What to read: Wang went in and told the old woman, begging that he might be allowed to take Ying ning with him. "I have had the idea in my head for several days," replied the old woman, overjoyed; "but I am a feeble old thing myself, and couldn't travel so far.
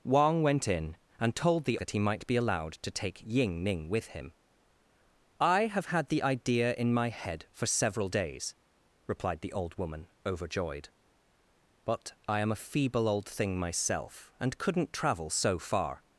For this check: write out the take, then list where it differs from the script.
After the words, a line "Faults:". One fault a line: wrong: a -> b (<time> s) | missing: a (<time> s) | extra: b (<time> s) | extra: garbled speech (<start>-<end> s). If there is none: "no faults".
Wang went in and told the that he might be allowed to take Ying ning with him. "I have had the idea in my head for several days," replied the old woman, overjoyed; "but I am a feeble old thing myself, and couldn't travel so far.
Faults:
missing: old woman begging (1.8 s)